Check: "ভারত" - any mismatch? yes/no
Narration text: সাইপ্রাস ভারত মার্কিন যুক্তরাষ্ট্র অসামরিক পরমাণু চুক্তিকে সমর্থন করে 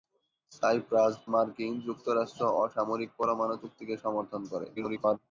yes